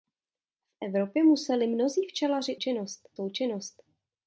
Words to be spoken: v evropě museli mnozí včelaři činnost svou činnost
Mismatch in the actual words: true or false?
false